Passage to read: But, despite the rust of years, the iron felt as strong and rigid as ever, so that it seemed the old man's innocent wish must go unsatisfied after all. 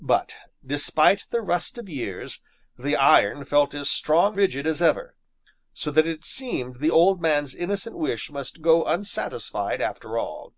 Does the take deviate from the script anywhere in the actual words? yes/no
yes